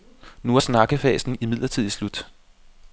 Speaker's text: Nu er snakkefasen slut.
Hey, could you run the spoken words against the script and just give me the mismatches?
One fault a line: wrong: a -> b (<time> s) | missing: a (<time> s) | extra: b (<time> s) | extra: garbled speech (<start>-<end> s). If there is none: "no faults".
extra: imidlertid (1.4 s)